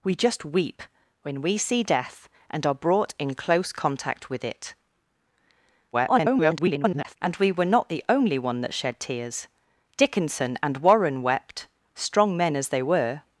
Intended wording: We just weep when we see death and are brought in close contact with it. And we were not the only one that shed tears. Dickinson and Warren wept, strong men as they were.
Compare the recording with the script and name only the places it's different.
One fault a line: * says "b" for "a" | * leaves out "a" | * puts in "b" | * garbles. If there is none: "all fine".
* garbles